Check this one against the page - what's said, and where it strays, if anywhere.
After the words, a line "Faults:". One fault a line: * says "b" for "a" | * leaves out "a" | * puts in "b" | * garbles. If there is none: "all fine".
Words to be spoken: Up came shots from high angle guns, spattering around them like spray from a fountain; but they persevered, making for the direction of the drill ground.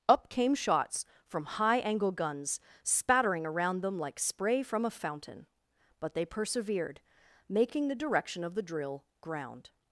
Up came shots from high angle guns, spattering around them like spray from a fountain; but they persevered, making the direction of the drill ground.
Faults:
* leaves out "for"